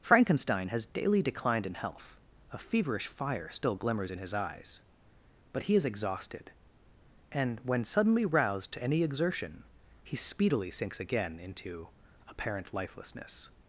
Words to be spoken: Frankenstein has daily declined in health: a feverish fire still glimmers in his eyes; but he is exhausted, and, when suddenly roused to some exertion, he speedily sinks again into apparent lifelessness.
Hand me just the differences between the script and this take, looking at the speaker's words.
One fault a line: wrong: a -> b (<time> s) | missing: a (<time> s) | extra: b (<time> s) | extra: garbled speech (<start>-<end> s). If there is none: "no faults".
wrong: some -> any (8.8 s)